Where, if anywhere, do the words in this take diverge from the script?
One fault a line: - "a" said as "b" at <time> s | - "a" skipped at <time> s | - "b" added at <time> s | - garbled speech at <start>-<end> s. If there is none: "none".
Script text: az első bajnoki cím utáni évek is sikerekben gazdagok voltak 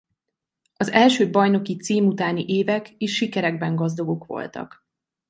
none